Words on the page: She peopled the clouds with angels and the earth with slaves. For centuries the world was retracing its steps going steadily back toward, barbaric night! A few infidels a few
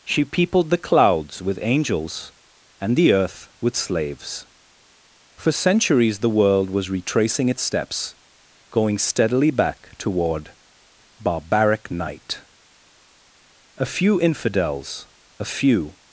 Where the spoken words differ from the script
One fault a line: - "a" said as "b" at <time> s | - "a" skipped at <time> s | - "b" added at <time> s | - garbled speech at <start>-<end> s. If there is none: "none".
none